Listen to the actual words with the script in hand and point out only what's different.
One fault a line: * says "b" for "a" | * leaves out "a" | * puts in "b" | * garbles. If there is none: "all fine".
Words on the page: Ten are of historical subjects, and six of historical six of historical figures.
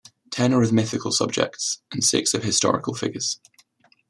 * says "mythical" for "historical"
* leaves out "six of historical"